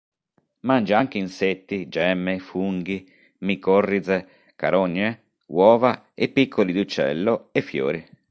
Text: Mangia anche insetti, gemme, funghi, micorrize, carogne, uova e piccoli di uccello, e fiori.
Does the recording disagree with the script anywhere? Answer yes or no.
no